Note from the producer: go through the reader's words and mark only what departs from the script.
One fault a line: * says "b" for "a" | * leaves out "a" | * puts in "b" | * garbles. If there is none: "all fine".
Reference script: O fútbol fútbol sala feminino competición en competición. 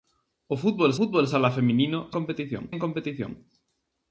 all fine